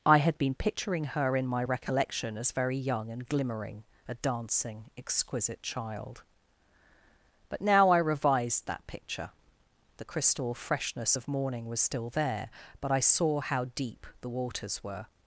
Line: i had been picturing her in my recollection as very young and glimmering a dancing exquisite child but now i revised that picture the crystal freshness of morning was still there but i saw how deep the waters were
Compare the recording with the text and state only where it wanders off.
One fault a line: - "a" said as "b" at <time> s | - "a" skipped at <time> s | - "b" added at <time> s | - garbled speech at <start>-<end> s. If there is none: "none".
none